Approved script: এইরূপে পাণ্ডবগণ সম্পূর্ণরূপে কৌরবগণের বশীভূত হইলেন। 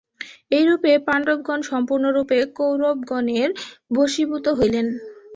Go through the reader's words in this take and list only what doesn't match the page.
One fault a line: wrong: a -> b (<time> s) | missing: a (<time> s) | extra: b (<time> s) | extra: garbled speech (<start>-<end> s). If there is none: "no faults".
no faults